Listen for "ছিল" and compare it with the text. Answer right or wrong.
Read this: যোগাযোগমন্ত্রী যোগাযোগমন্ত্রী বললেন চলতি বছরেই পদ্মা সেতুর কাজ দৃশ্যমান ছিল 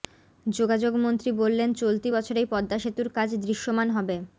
wrong